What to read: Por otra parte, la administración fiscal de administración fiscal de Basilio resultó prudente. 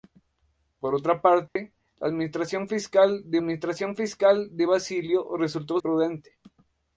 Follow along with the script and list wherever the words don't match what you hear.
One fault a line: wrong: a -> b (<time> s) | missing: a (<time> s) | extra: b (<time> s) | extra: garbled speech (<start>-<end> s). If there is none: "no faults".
no faults